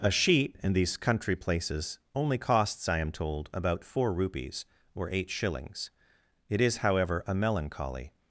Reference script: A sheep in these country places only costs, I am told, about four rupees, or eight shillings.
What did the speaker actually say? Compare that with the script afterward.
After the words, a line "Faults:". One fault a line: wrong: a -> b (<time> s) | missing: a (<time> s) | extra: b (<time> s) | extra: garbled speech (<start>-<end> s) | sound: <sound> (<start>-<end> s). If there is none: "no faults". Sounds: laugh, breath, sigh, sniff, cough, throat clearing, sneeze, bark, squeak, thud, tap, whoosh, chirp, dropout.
A sheep in these country places only costs, I am told, about four rupees, or eight shillings. It is, however, a melancholy
Faults:
extra: It is however a melancholy (6.5 s)